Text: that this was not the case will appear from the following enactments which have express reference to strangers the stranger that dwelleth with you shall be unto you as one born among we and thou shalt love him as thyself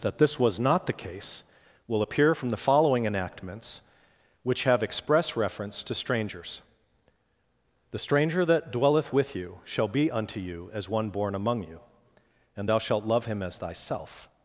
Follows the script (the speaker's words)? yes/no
no